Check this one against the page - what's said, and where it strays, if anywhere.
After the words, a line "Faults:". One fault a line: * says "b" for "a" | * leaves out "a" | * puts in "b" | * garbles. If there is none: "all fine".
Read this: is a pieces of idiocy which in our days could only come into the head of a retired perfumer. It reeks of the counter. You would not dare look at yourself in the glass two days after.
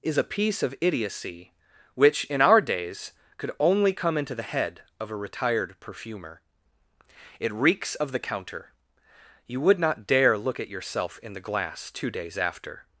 is a piece of idiocy which in our days could only come into the head of a retired perfumer. It reeks of the counter. You would not dare look at yourself in the glass two days after.
Faults:
* says "piece" for "pieces"